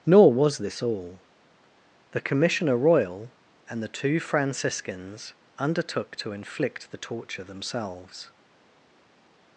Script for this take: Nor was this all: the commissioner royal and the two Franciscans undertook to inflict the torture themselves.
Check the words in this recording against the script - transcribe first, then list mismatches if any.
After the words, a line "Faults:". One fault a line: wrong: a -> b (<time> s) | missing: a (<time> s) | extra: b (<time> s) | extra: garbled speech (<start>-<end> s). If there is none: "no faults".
Nor was this all: the commissioner royal and the two Franciscans undertook to inflict the torture themselves.
Faults:
no faults